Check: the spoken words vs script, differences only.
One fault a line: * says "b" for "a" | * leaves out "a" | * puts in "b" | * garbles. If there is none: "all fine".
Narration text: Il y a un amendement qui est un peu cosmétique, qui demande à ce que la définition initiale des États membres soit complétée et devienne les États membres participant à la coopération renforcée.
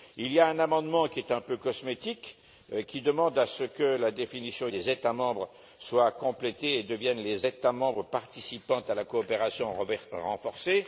* leaves out "initiale"